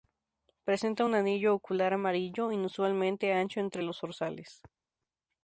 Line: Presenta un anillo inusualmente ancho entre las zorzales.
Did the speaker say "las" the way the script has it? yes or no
no